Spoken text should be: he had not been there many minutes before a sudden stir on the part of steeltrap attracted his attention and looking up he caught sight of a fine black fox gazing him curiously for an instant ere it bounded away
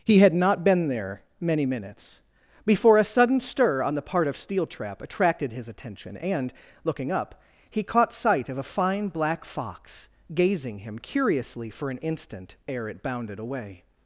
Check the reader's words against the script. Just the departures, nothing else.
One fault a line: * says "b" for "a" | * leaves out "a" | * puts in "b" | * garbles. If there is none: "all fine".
all fine